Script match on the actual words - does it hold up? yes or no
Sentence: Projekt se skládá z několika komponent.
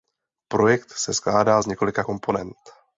yes